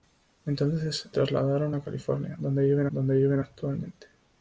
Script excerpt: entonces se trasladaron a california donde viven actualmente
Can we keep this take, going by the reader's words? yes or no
no